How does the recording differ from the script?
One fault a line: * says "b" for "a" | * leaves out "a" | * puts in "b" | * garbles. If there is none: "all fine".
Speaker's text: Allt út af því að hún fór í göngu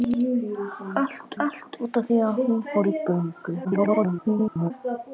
* puts in "allt"
* garbles